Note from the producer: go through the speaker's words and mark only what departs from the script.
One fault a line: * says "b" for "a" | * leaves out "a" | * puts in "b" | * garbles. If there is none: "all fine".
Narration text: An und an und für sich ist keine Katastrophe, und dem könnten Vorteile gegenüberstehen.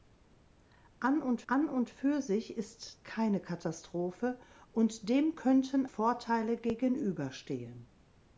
all fine